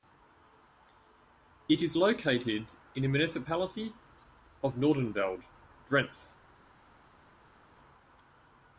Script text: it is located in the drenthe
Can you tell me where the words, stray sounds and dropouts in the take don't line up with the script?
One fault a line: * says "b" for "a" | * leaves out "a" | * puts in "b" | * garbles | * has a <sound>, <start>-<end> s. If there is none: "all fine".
* puts in "municipality of noordenveld"